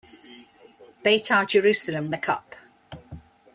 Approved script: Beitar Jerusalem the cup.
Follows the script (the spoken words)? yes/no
yes